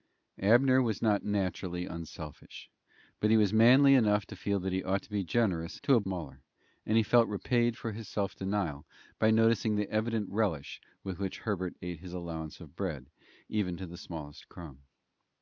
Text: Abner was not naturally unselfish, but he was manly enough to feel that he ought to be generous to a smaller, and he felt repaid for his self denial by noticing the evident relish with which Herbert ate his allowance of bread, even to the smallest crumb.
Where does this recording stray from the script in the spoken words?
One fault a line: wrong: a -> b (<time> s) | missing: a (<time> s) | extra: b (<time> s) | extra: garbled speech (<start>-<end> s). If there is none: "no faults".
no faults